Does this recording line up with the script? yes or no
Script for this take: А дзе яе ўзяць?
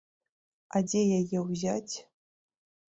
yes